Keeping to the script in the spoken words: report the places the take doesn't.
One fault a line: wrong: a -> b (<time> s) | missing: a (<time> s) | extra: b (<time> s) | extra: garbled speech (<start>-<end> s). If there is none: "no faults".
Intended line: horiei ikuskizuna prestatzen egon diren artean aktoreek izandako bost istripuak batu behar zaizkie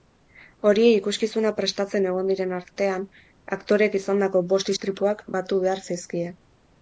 no faults